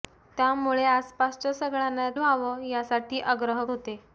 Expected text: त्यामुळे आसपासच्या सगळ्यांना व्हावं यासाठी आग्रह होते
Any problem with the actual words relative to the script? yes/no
no